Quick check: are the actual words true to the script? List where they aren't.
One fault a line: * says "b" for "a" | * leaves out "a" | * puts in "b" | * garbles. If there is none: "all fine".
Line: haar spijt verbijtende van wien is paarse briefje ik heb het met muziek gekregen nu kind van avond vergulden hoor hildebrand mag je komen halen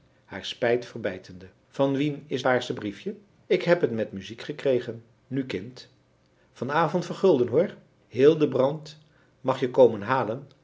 all fine